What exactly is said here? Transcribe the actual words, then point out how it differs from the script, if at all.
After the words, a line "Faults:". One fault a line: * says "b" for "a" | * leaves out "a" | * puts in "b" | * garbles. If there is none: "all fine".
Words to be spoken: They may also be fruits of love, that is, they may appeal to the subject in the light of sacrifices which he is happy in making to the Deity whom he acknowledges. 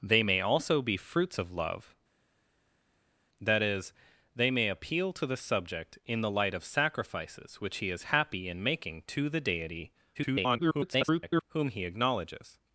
They may also be fruits of love, that is, they may appeal to the subject in the light of sacrifices which he is happy in making to the Deity [garbled] whom he acknowledges.
Faults:
* garbles